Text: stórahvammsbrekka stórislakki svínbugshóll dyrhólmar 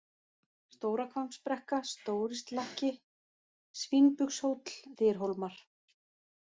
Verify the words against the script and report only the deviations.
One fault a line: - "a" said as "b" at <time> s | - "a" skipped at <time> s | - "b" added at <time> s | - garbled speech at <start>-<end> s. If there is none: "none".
none